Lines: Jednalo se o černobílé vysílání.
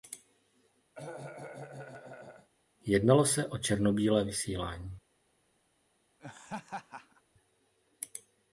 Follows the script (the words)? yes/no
yes